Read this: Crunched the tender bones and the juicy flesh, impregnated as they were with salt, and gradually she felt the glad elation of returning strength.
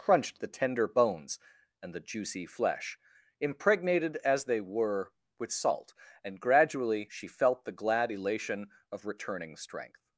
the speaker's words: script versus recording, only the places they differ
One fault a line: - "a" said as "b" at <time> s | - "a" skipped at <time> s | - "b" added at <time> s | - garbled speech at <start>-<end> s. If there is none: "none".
none